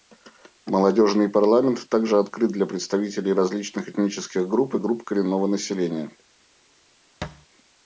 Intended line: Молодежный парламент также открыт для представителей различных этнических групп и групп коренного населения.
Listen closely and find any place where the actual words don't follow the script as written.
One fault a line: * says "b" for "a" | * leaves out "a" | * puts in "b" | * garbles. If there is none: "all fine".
all fine